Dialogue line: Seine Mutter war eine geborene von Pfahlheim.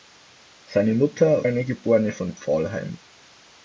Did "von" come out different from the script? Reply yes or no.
no